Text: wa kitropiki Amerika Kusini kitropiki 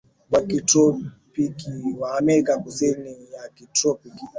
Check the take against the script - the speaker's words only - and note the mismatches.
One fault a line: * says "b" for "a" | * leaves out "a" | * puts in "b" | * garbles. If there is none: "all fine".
* puts in "wa"
* puts in "ya"